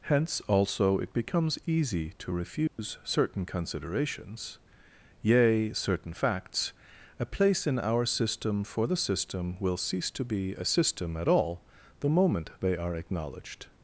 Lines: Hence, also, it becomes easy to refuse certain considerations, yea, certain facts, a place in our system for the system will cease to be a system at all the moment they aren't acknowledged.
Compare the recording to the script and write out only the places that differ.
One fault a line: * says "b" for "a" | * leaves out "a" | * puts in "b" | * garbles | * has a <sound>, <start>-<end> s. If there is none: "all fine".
* has a dropout, 2.7-2.8 s
* says "are" for "aren't"